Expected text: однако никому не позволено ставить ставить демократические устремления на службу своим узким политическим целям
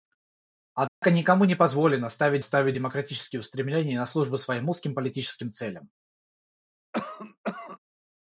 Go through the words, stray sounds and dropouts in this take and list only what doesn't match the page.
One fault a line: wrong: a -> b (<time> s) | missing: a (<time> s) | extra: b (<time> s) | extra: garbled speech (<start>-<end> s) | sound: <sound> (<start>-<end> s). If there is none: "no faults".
sound: dropout (0.9-1.0 s)
sound: cough (6.9-7.8 s)